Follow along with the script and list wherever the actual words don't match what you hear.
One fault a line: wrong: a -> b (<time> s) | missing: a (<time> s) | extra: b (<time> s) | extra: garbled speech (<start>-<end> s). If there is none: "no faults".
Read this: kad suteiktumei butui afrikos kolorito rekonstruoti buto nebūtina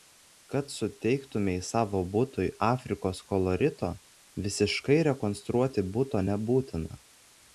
extra: savo (1.7 s)
extra: visiškai (4.5 s)